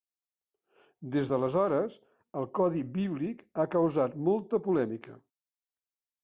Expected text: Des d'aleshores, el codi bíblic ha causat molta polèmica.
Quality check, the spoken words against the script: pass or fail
pass